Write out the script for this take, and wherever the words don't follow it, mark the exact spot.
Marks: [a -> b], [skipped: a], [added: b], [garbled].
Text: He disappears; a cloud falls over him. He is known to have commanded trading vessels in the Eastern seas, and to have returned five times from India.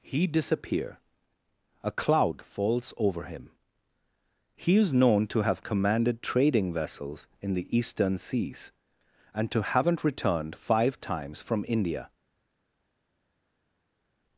He [disappears; -> disappear] a cloud falls over him. He is known to have commanded trading vessels in the Eastern seas, and to [have -> haven't] returned five times from India.